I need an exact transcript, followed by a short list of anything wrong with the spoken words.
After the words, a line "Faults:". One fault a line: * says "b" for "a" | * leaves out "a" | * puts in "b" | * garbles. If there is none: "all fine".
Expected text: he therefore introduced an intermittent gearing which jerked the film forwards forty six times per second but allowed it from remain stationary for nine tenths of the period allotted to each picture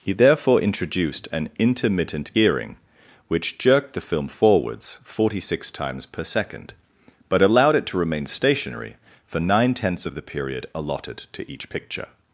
he therefore introduced an intermittent gearing which jerked the film forwards forty six times per second but allowed it to remain stationary for nine tenths of the period allotted to each picture
Faults:
* says "to" for "from"